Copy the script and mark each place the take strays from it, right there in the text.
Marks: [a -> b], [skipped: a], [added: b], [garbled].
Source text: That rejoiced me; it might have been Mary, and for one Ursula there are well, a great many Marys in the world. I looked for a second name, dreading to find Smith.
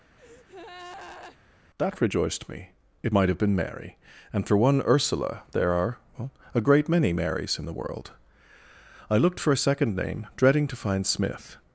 That rejoiced me; it might have been Mary, and for one Ursula there are well, a great many Marys in the world. I looked for a second name, dreading to find Smith.